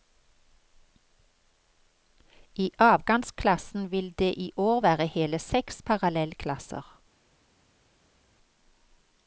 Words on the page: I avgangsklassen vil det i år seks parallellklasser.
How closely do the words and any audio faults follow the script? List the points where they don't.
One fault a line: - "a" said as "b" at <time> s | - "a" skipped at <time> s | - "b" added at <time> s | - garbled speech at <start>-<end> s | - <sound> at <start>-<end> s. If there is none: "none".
- "være hele" added at 4.8 s